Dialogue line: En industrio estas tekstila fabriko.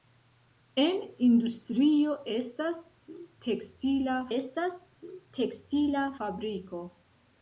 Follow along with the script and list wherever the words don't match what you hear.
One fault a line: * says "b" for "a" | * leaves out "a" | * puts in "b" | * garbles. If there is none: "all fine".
* puts in "estas tekstila"